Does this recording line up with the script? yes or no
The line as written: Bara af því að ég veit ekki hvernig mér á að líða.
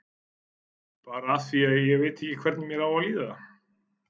yes